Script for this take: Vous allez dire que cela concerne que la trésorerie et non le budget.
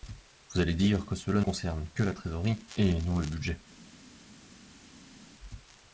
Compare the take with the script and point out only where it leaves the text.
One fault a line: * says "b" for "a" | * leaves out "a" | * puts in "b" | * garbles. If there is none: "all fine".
all fine